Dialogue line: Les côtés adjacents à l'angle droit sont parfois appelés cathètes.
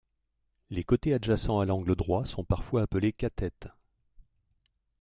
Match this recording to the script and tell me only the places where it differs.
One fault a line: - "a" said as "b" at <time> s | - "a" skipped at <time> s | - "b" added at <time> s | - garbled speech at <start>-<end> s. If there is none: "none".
none